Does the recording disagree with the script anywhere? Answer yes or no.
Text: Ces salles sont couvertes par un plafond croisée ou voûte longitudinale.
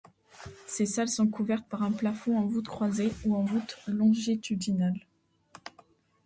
yes